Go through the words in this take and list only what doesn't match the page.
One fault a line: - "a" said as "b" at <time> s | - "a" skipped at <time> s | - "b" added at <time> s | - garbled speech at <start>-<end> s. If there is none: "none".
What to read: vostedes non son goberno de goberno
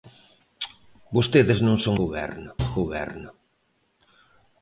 none